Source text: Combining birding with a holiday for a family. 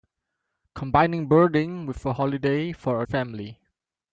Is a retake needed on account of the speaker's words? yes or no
no